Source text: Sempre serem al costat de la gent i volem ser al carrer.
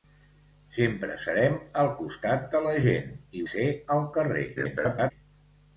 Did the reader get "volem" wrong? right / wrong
wrong